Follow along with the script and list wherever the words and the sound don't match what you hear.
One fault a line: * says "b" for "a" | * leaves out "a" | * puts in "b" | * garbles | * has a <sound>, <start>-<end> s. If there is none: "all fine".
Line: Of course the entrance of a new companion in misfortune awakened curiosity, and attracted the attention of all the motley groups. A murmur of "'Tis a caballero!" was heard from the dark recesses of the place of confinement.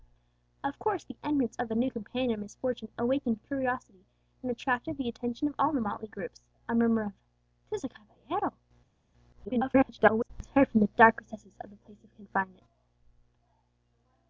* garbles